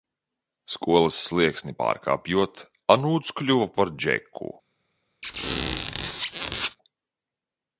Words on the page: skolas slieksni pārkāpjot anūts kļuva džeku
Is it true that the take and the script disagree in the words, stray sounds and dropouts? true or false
true